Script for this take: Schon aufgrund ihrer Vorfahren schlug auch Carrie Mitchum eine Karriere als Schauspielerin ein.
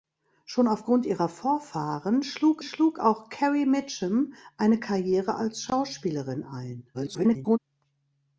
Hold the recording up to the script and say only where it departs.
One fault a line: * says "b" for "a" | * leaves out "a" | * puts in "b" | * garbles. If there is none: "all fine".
* puts in "schlug"
* garbles